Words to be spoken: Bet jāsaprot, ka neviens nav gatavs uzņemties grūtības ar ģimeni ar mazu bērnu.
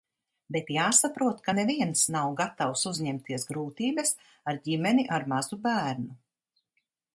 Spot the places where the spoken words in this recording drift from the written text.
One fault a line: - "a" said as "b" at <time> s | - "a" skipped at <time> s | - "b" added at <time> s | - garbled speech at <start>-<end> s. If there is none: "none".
none